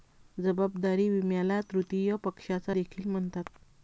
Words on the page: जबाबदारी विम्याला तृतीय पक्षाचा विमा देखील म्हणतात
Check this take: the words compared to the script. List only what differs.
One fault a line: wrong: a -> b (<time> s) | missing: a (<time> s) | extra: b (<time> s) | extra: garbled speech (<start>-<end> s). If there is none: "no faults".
missing: विमा (2.7 s)